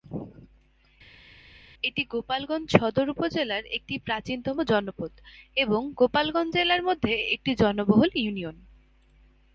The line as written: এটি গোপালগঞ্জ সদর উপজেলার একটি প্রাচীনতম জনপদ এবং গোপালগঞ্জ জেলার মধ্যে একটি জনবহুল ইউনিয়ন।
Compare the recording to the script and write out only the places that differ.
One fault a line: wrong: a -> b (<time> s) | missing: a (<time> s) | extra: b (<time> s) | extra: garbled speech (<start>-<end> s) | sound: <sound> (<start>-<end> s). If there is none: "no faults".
no faults